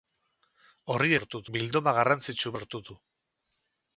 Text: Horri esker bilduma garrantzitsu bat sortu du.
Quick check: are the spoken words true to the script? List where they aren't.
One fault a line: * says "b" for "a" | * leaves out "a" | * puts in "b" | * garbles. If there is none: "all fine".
* says "sortu" for "esker"
* leaves out "bat"